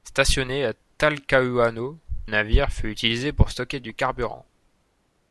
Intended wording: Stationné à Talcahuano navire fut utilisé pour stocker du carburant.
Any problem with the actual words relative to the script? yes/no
no